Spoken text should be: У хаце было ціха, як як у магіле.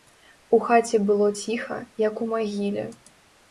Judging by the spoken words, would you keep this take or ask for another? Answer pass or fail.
fail